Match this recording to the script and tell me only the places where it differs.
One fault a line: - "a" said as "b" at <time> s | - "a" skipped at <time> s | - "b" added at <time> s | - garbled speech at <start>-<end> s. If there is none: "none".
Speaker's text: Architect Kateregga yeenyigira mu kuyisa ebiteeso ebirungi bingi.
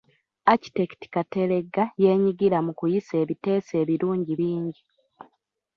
none